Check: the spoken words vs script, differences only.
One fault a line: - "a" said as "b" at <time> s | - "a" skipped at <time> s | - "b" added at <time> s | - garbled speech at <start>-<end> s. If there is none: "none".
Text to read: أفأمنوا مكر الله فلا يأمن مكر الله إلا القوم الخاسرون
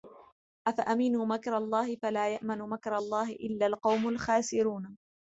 none